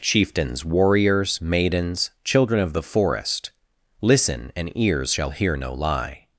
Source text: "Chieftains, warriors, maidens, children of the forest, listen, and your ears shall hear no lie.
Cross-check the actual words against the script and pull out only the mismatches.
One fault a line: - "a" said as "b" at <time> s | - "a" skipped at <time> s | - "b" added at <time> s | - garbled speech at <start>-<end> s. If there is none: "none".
- "your" skipped at 4.7 s